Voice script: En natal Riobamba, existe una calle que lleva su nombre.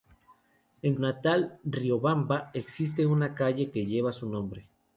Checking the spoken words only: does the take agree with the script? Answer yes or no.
yes